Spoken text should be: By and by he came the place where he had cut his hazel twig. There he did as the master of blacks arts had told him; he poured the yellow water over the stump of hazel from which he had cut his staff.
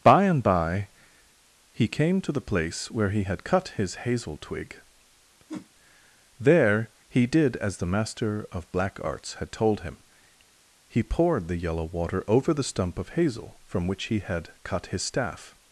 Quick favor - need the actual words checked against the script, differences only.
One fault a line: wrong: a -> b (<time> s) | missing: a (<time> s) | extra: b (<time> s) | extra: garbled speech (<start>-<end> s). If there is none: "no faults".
extra: to (2.2 s)
wrong: blacks -> black (8.7 s)